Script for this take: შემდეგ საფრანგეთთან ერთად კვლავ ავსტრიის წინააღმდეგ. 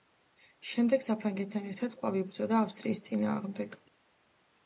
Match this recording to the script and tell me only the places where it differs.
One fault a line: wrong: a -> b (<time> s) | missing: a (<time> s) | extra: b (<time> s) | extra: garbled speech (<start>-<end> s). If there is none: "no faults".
extra: იბრძოდა (2.2 s)